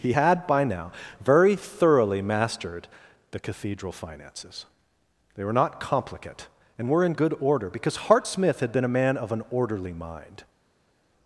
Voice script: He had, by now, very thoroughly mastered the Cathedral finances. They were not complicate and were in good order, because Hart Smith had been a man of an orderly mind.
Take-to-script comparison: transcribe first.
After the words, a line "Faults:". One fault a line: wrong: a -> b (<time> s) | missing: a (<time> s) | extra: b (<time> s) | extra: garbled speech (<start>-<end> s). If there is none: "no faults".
He had, by now, very thoroughly mastered the Cathedral finances. They were not complicate and were in good order, because Hart Smith had been a man of an orderly mind.
Faults:
no faults